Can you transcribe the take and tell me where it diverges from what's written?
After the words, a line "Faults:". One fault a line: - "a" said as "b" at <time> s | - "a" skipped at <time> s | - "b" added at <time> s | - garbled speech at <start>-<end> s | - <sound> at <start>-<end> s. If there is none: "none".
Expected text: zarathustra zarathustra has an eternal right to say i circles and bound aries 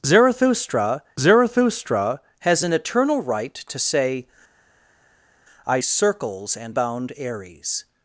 zarathustra zarathustra has an eternal right to say i circles and bound aries
Faults:
none